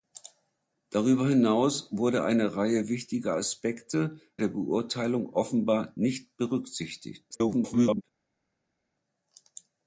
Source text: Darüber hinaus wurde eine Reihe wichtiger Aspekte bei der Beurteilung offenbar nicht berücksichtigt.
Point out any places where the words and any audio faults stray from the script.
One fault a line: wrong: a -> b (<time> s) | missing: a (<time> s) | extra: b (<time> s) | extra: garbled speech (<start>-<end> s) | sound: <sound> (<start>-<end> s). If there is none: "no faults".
missing: bei (4.2 s)
extra: garbled speech (7.3-8.0 s)